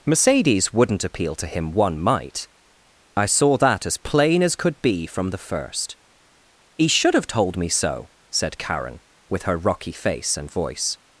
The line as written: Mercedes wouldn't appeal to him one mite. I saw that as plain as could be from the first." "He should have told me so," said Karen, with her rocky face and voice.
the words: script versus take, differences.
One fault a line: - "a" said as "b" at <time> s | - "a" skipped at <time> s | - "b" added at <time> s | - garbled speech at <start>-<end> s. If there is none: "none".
none